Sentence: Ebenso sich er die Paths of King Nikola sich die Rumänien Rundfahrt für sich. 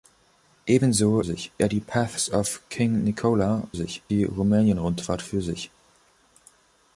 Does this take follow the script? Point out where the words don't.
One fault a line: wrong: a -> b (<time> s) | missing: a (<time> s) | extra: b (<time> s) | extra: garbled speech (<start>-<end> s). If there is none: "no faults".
no faults